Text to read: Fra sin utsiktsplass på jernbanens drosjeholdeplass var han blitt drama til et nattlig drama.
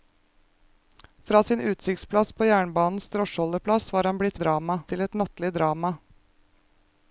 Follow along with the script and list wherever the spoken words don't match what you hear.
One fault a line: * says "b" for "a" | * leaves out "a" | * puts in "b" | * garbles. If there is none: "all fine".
all fine